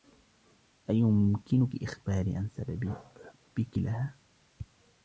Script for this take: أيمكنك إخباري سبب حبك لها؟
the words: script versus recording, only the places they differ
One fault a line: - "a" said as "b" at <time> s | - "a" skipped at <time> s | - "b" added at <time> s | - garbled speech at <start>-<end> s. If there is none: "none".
- "عن" added at 2.4 s